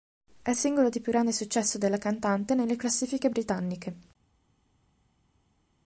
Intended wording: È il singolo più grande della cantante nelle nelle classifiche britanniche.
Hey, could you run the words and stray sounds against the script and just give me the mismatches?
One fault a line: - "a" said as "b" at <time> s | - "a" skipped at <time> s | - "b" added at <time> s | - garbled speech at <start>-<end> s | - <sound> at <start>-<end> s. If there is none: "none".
- "di" added at 0.9 s
- "successo" added at 1.3 s
- "nelle" skipped at 2.8 s